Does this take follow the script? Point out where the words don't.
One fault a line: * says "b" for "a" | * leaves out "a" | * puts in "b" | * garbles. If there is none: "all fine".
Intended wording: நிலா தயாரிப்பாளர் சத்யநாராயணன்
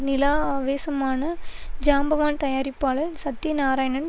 * puts in "ஆவேசமான ஜாம்பவான்"